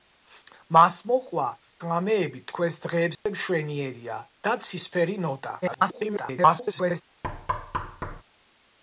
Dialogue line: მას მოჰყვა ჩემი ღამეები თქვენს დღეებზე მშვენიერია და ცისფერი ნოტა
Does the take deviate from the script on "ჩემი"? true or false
true